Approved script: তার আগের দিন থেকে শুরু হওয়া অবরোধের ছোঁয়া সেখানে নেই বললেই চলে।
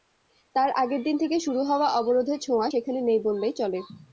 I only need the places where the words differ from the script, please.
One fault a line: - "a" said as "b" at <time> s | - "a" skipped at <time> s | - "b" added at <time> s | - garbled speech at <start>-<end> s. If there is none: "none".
none